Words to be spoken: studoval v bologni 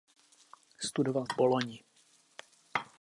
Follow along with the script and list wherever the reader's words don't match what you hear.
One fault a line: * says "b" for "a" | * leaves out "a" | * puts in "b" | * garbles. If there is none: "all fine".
all fine